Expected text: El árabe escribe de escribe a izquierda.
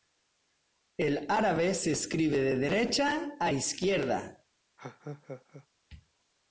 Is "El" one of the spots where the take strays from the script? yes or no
no